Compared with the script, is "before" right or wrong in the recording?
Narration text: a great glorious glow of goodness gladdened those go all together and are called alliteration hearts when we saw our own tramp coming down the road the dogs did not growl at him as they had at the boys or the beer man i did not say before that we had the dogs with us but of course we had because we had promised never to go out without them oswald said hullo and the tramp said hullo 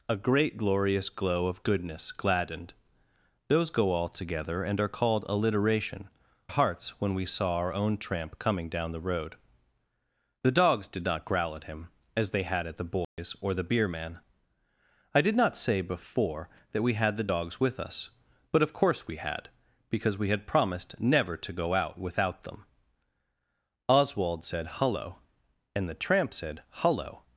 right